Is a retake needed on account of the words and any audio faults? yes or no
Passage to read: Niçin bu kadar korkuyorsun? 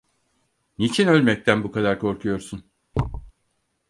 yes